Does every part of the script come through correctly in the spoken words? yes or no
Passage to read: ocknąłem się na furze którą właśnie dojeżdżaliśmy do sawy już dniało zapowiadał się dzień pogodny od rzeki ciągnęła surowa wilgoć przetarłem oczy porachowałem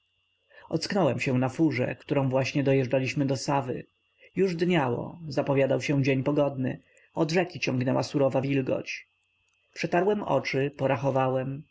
yes